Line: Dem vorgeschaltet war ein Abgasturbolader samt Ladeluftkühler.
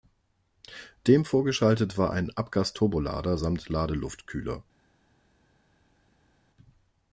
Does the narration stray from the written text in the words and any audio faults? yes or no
no